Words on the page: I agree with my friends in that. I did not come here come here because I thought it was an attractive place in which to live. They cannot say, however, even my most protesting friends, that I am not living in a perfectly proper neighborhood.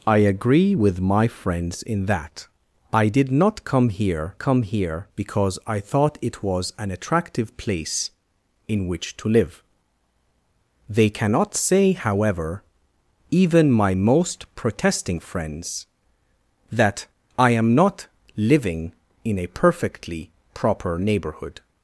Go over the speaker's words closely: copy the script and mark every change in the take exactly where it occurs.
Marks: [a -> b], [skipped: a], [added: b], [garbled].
I agree with my friends in that. I did not come here come here because I thought it was an attractive place in which to live. They cannot say, however, even my most protesting friends, that I am not living in a perfectly proper neighborhood.